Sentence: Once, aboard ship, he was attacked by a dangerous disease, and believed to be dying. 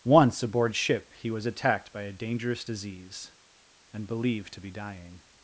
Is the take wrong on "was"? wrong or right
right